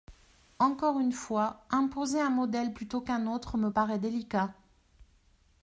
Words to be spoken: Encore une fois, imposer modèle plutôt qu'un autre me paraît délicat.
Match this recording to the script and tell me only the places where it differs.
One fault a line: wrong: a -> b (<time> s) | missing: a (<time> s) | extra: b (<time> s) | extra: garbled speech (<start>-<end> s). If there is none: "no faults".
extra: un (2.2 s)